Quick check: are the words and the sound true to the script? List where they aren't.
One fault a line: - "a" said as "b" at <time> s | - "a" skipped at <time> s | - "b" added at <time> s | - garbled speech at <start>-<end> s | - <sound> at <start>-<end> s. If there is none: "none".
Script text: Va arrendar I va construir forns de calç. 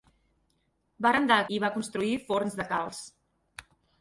none